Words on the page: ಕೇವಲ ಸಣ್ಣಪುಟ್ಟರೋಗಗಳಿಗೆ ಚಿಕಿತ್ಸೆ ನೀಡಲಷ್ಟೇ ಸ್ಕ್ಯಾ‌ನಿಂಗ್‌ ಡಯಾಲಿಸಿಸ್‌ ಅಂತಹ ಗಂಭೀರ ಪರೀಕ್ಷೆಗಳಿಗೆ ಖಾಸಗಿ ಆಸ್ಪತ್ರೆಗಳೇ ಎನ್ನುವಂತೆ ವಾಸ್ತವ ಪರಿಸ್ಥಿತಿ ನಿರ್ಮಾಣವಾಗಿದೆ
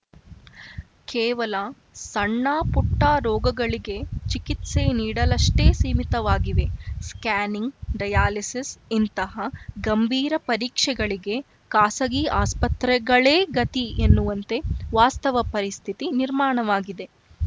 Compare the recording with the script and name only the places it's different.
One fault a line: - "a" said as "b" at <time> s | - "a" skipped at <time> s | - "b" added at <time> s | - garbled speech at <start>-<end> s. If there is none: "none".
- "ಸೀಮಿತವಾಗಿವೆ" added at 5.7 s
- "ಅಂತಹ" said as "ಇಂತಹ" at 8.9 s
- "ಗತಿ" added at 13.6 s